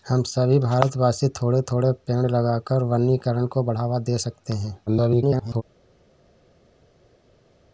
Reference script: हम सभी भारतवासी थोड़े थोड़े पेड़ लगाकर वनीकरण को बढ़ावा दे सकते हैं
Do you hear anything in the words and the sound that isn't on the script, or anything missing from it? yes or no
yes